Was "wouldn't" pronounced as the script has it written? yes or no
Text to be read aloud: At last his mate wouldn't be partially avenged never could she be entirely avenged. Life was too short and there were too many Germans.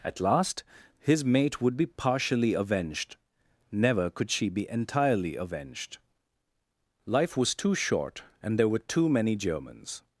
no